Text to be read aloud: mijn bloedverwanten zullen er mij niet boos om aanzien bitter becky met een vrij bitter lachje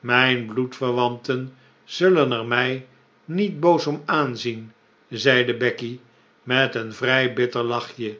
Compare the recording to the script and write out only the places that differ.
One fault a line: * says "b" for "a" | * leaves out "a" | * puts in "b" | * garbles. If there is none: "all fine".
* says "zeide" for "bitter"